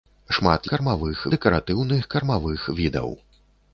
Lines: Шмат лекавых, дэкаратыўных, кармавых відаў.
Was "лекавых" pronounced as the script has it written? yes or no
no